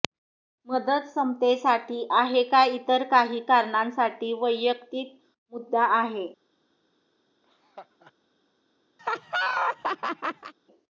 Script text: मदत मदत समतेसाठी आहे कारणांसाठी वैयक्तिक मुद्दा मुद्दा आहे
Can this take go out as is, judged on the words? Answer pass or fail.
fail